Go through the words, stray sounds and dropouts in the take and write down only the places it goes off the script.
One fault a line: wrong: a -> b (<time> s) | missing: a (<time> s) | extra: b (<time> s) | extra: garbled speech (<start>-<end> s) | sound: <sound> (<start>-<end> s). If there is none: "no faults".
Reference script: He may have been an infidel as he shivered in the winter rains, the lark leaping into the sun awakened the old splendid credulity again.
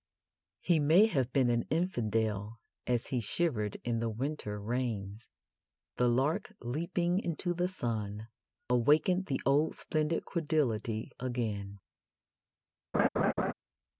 sound: laugh (12.9-13.5 s)